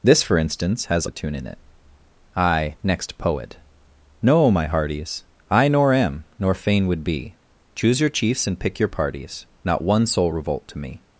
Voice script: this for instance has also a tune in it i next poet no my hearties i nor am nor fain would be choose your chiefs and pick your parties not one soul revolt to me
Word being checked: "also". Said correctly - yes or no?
no